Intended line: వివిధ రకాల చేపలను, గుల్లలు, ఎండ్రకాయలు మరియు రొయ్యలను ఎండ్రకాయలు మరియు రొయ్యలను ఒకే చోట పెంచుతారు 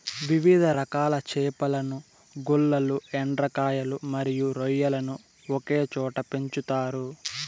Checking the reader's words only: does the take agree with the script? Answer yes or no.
no